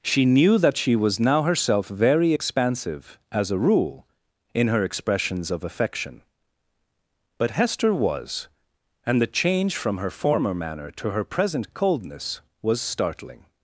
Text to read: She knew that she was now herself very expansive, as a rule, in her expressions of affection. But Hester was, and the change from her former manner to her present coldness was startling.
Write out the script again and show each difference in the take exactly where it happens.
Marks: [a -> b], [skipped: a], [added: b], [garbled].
She knew that she was now herself very expansive, as a rule, in her expressions of affection. But Hester was, and the change from her former manner to her present coldness was startling.